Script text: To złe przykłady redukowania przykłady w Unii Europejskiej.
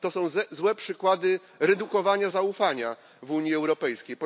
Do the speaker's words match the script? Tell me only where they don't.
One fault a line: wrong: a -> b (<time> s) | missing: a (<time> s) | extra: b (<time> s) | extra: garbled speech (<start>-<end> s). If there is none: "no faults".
extra: są (0.1 s)
wrong: przykłady -> zaufania (2.3 s)